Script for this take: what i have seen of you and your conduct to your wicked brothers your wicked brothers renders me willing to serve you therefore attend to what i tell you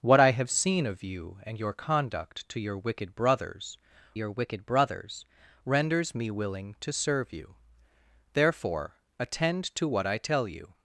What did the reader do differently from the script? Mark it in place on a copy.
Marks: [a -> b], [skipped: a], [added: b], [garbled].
what i have seen of you and your conduct to your wicked brothers your wicked brothers renders me willing to serve you therefore attend to what i tell you